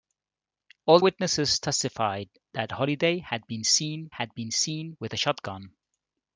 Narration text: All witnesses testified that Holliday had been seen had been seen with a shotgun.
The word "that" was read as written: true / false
true